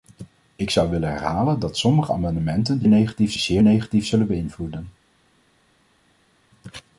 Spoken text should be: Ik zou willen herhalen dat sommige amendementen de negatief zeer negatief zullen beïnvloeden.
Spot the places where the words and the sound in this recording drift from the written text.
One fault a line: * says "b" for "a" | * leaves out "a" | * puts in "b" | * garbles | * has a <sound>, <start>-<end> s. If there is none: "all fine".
all fine